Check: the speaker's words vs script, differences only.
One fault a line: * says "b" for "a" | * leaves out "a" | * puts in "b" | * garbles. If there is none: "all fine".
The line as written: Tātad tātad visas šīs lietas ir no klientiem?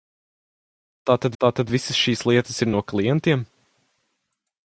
all fine